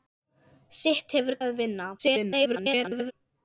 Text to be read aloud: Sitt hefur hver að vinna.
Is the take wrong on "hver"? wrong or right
wrong